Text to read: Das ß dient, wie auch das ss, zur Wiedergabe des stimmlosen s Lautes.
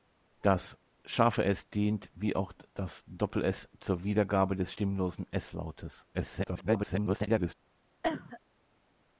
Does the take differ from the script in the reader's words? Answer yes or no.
yes